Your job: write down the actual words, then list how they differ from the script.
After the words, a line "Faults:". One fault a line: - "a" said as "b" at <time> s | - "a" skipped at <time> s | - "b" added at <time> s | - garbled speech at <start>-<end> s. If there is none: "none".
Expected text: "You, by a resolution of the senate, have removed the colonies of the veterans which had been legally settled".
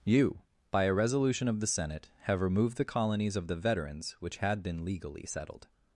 "You, by a resolution of the senate, have removed the colonies of the veterans which had been legally settled".
Faults:
none